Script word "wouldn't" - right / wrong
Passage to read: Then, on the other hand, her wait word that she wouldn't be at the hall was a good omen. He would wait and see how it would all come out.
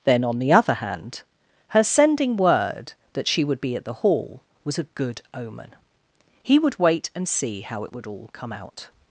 wrong